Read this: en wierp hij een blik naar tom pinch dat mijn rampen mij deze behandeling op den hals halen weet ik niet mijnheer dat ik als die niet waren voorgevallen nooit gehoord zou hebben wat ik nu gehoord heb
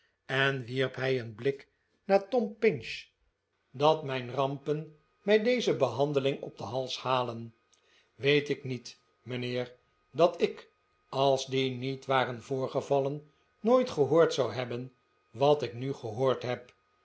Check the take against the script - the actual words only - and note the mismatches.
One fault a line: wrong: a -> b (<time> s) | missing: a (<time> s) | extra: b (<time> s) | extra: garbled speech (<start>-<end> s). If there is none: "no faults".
no faults